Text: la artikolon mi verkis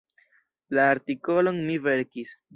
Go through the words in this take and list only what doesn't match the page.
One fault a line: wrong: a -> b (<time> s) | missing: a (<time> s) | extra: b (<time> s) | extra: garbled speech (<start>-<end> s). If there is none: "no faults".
no faults